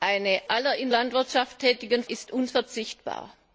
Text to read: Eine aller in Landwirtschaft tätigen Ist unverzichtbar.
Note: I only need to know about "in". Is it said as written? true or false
true